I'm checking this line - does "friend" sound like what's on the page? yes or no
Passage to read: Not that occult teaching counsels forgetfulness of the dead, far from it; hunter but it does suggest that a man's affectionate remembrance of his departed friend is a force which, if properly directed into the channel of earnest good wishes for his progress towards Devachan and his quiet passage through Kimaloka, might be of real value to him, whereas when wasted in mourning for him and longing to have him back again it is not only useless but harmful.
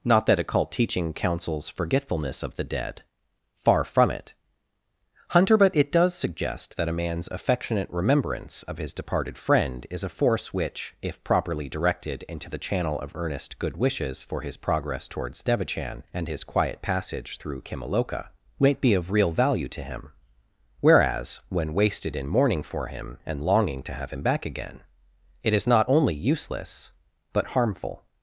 yes